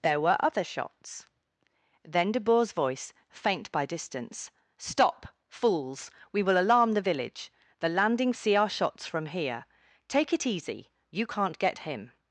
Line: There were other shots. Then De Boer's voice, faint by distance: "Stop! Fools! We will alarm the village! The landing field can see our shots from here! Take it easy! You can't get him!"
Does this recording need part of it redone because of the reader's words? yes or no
yes